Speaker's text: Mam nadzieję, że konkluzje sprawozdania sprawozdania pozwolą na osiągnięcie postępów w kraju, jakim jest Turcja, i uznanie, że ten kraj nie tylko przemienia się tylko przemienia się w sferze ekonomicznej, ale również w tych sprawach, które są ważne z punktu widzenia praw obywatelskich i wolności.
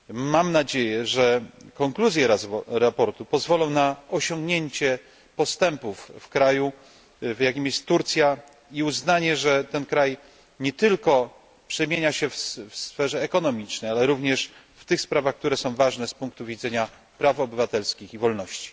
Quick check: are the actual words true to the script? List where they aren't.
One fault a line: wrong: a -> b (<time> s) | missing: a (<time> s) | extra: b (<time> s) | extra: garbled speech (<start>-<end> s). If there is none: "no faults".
missing: sprawozdania (3.1 s)
missing: tylko przemienia się (12.3 s)